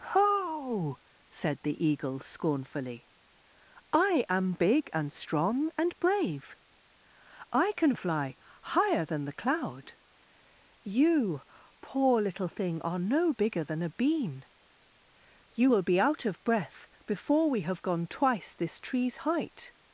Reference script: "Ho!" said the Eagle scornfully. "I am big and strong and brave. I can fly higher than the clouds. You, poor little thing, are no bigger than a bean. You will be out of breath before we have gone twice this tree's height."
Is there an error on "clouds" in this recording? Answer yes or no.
yes